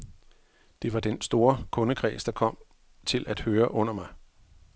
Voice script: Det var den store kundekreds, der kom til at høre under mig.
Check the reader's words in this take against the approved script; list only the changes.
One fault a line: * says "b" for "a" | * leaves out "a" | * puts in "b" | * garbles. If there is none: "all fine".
all fine